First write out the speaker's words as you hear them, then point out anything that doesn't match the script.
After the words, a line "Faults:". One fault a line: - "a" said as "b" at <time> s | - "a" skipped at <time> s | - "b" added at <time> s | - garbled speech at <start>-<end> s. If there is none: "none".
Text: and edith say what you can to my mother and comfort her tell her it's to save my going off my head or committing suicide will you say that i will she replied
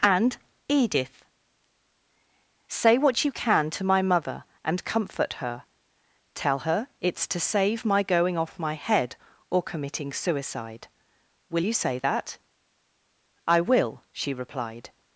and edith say what you can to my mother and comfort her tell her it's to save my going off my head or committing suicide will you say that i will she replied
Faults:
none